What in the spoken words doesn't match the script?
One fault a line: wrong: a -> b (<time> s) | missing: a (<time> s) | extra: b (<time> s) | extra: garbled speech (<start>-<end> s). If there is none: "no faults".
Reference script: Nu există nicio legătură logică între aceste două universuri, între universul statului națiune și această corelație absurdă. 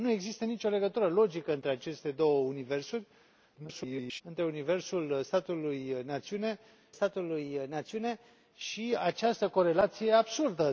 extra: garbled speech (3.6-4.2 s)
extra: statului națiune (6.9 s)